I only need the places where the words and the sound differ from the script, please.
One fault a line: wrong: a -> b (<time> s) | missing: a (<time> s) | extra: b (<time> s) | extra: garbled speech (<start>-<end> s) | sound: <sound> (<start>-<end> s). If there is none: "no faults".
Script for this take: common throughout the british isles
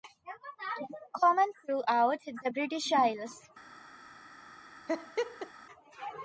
sound: laugh (4.9-5.5 s)